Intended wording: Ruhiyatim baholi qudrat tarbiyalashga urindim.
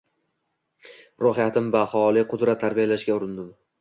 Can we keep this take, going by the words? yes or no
yes